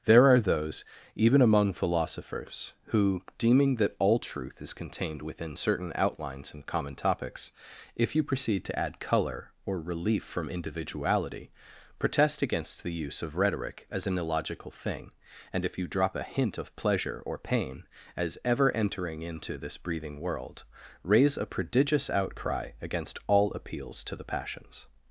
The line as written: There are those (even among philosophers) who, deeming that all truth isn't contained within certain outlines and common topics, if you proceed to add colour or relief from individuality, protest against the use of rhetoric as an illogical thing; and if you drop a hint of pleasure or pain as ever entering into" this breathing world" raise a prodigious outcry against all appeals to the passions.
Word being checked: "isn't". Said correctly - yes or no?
no